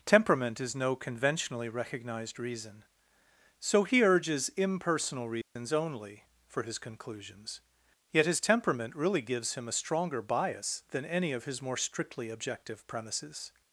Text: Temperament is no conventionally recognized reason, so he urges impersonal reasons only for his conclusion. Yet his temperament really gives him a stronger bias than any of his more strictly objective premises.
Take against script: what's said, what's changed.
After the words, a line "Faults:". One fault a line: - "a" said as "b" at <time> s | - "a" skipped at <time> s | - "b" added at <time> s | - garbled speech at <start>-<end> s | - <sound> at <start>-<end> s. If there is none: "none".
Temperament is no conventionally recognized reason, so he urges impersonal reasons only for his conclusions. Yet his temperament really gives him a stronger bias than any of his more strictly objective premises.
Faults:
- dropout at 5.4-5.6 s
- "conclusion" said as "conclusions" at 6.8 s